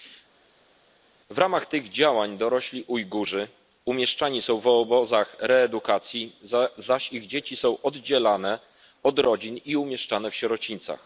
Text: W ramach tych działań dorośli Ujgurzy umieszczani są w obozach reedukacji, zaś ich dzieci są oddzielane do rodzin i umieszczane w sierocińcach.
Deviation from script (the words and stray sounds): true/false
true